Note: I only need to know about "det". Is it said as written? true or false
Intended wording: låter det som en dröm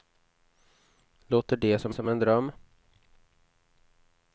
true